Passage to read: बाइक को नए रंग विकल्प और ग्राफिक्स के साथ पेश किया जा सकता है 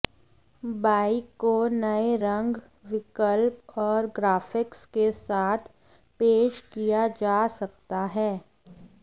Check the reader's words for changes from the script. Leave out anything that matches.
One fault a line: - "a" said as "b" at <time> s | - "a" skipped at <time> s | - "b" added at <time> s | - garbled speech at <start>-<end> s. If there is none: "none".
none